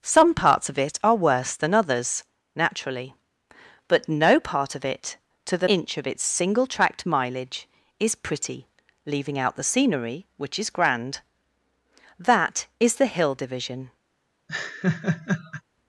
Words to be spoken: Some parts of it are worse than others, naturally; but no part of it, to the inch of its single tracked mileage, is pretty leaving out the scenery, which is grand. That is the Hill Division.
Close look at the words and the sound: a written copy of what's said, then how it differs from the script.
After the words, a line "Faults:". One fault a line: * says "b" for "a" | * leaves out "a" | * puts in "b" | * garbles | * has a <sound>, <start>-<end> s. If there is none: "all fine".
Some parts of it are worse than others, naturally; but no part of it, to the inch of its single tracked mileage, is pretty leaving out the scenery, which is grand. That is the Hill Division.
Faults:
* has a laugh, 14.5-15.6 s